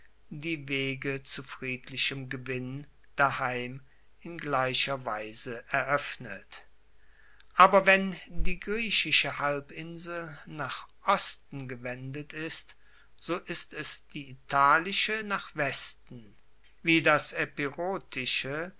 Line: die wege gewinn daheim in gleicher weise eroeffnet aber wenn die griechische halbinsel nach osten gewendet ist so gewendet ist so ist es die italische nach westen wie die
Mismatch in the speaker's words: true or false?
true